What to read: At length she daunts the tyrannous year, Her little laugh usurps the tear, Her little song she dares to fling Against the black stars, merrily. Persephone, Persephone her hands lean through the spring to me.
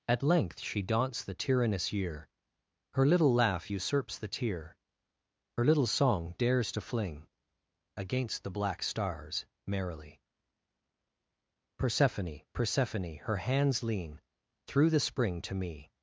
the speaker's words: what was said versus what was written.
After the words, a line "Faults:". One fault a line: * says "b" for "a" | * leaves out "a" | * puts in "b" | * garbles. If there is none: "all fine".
At length she daunts the tyrannous year, Her little laugh usurps the tear, Her little song dares to fling Against the black stars, merrily. Persephone, Persephone her hands lean through the spring to me.
Faults:
* leaves out "she"